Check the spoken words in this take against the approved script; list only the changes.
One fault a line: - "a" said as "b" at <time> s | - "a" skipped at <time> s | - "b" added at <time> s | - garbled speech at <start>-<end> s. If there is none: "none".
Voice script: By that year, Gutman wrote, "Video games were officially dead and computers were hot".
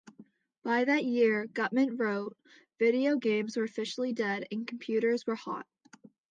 none